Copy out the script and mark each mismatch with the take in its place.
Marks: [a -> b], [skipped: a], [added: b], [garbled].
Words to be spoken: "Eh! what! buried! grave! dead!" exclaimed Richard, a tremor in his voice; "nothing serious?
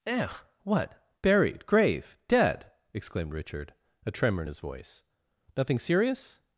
"Eh! what! buried! grave! dead!" exclaimed Richard, a tremor in his voice; "nothing serious?